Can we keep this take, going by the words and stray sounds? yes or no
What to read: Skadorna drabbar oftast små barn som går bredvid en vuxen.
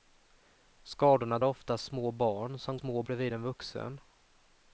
no